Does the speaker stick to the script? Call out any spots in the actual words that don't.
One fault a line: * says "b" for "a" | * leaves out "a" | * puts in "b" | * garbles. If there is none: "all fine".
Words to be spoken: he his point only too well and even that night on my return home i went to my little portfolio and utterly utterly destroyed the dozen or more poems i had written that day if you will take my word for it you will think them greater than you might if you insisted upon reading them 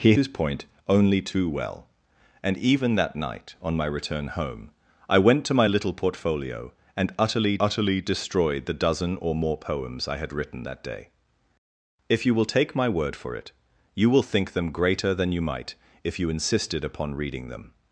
all fine